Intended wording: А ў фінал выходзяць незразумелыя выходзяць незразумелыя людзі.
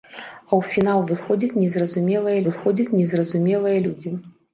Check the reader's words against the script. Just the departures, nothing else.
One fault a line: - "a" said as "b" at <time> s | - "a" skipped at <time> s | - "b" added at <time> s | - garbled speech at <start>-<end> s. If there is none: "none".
none